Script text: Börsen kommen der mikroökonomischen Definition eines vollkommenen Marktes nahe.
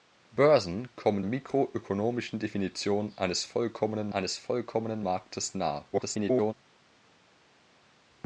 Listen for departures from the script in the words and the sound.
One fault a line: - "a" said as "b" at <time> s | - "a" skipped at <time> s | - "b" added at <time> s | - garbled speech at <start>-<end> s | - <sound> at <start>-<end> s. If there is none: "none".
- "der" skipped at 1.2 s
- "eines vollkommenen" added at 4.1 s
- garbled speech at 5.9-6.5 s